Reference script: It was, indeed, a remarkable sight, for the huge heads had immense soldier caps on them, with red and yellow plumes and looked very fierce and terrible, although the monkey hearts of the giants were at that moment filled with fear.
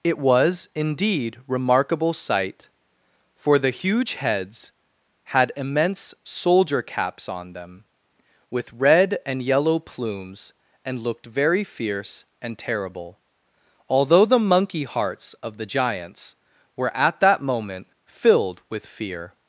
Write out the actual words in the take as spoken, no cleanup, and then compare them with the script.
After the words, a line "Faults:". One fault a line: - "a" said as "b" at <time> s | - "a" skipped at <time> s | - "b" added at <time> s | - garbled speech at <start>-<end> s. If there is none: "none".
It was, indeed, remarkable sight, for the huge heads had immense soldier caps on them, with red and yellow plumes and looked very fierce and terrible, although the monkey hearts of the giants were at that moment filled with fear.
Faults:
- "a" skipped at 1.4 s